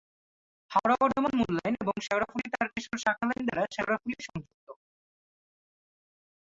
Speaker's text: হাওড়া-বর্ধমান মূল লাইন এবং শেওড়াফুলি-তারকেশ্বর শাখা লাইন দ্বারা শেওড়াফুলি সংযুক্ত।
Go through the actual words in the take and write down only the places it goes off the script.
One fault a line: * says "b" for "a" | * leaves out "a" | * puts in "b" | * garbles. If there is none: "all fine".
all fine